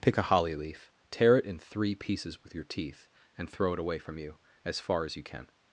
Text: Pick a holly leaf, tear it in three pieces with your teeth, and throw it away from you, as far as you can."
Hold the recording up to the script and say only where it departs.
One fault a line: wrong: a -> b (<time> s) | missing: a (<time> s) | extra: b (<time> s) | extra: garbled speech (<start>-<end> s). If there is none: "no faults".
no faults